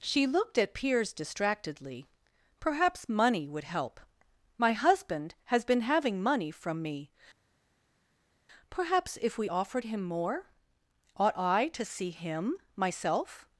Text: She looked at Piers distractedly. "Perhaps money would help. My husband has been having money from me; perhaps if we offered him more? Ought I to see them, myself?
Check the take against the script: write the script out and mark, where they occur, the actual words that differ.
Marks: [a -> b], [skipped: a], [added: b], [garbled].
She looked at Piers distractedly. "Perhaps money would help. My husband has been having money from me; perhaps if we offered him more? Ought I to see [them, -> him] myself?